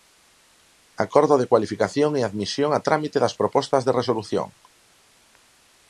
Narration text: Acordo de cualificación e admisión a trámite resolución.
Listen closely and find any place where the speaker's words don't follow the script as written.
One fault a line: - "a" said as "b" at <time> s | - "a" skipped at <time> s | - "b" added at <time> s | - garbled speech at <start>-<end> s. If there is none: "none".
- "das propostas de" added at 3.2 s